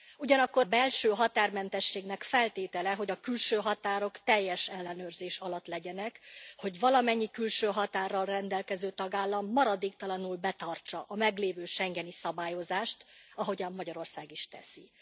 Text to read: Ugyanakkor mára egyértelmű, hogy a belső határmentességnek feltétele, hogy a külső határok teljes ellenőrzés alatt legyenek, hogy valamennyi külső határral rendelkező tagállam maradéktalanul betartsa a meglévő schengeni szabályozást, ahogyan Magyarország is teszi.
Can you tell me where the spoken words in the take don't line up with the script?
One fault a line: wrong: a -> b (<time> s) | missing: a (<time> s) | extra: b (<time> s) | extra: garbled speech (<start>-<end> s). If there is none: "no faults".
missing: mára egyértelmű hogy (0.7 s)